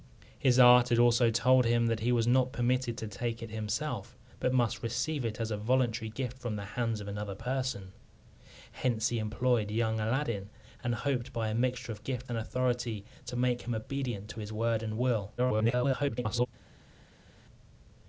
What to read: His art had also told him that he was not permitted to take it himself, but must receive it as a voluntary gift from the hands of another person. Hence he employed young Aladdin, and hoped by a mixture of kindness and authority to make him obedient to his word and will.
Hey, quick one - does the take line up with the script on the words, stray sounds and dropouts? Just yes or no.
no